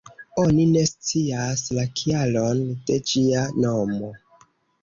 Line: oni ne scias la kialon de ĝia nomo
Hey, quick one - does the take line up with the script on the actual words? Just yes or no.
yes